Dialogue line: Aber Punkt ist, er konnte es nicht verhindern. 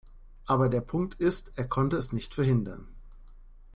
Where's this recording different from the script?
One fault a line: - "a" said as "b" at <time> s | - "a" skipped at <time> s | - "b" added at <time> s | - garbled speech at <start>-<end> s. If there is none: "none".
- "der" added at 0.7 s